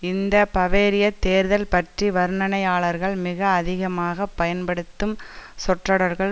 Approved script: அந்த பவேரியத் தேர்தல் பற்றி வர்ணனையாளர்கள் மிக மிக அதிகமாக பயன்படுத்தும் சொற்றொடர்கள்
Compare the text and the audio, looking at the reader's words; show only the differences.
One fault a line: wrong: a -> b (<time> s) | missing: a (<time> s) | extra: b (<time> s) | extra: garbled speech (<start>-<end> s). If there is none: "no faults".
wrong: அந்த -> இந்த (0.0 s)
missing: மிக (3.4 s)